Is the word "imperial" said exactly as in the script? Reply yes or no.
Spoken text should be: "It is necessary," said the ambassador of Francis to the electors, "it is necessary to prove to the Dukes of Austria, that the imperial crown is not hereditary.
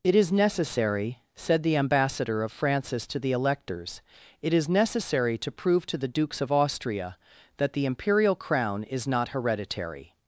yes